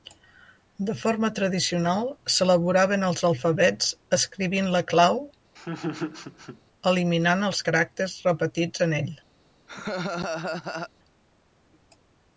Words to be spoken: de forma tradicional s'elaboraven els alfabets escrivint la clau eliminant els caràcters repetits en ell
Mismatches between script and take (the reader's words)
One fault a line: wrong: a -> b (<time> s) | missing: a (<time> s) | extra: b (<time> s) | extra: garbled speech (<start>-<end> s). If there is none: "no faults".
no faults